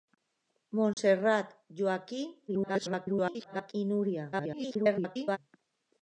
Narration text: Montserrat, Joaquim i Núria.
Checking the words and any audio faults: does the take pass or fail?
fail